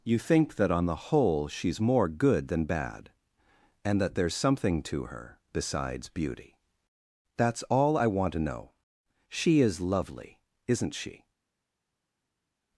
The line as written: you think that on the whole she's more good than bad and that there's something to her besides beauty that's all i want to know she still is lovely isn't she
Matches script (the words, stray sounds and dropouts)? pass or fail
fail